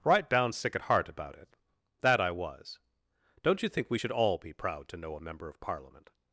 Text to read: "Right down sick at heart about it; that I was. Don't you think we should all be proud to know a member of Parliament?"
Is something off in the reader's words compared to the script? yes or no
no